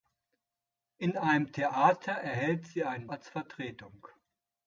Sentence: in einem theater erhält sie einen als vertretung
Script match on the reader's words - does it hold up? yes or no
yes